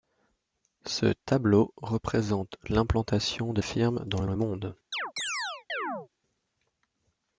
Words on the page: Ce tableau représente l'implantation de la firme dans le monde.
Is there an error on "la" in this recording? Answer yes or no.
yes